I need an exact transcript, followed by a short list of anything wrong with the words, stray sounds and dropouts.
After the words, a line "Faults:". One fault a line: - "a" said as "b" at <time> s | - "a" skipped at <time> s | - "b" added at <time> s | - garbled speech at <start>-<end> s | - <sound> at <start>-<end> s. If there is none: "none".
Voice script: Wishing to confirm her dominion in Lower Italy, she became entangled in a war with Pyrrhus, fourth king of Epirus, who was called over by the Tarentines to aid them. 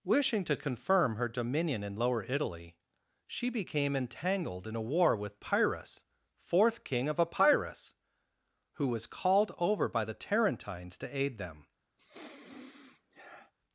Wishing to confirm her dominion in Lower Italy, she became entangled in a war with Pyrrhus, fourth king of Epirus, who was called over by the Tarentines to aid them.
Faults:
- sniff at 12.0-13.5 s